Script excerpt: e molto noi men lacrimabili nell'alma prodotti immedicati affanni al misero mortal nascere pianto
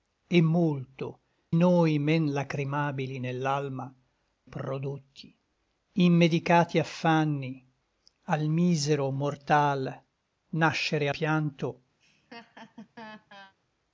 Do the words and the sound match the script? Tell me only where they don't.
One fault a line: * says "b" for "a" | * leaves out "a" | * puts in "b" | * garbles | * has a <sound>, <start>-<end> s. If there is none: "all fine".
* has a laugh, 12.0-13.5 s